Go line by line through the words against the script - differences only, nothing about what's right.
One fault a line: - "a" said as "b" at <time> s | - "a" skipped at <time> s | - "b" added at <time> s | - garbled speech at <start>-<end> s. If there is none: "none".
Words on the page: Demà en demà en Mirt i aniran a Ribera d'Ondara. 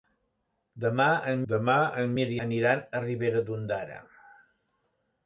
none